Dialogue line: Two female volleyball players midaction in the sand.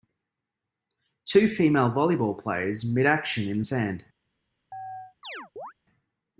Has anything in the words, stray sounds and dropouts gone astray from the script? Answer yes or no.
yes